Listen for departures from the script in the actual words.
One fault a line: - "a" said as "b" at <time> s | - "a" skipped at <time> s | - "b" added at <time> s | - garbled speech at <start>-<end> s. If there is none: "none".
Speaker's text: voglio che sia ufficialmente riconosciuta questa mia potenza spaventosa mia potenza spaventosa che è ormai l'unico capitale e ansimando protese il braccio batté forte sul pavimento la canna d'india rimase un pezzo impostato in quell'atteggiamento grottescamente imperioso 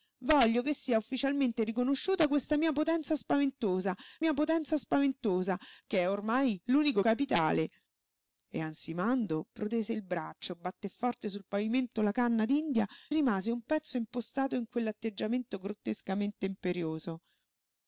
none